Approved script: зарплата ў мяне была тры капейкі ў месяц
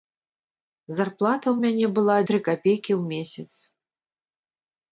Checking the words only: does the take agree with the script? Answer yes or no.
yes